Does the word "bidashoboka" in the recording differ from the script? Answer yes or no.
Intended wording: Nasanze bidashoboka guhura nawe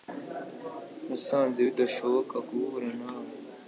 no